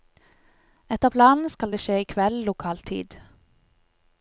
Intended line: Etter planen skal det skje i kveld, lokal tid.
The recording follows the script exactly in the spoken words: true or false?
true